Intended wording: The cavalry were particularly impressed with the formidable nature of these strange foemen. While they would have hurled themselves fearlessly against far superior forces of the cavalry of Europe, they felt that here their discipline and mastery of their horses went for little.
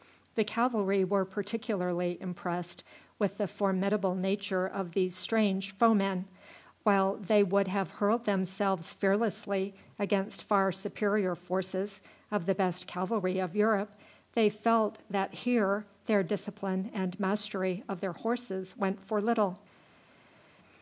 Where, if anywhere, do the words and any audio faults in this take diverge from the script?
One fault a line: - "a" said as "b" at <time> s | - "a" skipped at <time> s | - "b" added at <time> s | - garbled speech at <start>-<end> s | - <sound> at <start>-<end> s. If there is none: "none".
- "best" added at 12.6 s